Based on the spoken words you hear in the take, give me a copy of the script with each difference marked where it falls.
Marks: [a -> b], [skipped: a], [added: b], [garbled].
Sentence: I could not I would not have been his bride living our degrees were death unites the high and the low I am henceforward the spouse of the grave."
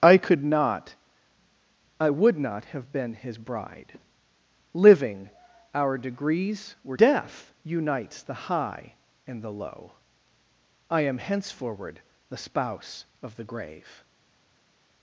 I could not I would not have been his bride living our degrees were death unites the high and the low I am henceforward the spouse of the grave."